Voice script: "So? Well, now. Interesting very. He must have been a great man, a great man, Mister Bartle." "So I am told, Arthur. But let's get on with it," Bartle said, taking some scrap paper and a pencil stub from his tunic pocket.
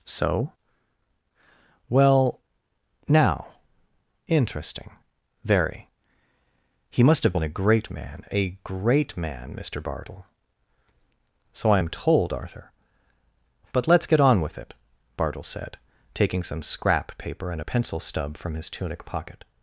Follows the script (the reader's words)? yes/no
yes